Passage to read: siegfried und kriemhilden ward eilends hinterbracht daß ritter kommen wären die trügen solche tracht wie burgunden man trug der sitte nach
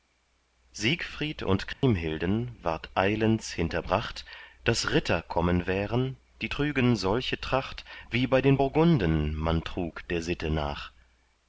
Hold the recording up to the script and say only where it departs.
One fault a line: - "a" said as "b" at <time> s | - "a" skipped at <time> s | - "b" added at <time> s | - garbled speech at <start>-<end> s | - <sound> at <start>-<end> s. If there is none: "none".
- dropout at 1.7-1.8 s
- "bei den" added at 8.3 s